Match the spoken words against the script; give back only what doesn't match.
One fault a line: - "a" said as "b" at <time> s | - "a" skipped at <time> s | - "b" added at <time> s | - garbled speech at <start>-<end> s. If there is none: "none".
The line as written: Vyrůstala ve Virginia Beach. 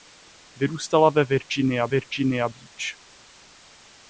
- "Virginia" added at 1.9 s